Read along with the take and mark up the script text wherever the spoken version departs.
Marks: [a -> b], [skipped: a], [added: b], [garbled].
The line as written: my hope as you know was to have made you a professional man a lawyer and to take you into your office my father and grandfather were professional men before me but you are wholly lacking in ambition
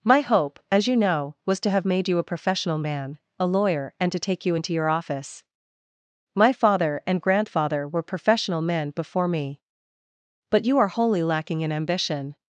my hope as you know was to have made you a professional man a lawyer and to take you into your office my father and grandfather were professional men before me but you are wholly lacking in ambition